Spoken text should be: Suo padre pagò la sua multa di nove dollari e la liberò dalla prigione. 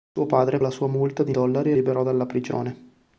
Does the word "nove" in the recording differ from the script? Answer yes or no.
yes